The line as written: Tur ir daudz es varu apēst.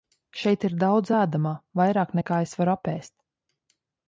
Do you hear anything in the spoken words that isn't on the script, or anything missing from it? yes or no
yes